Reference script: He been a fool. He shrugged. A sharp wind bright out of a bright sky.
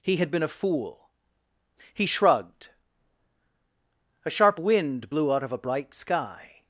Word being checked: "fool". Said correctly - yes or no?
yes